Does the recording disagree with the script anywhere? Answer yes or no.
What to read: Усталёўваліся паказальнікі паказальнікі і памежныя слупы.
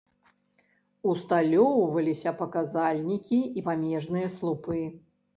yes